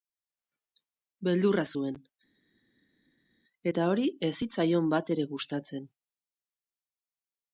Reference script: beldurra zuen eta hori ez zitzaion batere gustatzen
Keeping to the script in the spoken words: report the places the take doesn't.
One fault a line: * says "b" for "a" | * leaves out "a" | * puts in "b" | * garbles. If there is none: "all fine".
all fine